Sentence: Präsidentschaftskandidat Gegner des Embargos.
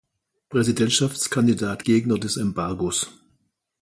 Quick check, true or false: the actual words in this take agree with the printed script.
true